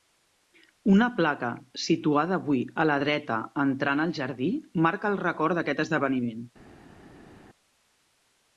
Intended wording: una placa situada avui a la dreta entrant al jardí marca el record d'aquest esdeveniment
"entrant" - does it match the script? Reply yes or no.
yes